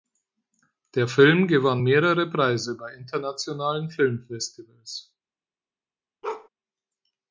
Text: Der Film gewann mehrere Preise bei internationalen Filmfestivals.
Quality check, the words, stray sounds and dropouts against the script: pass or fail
fail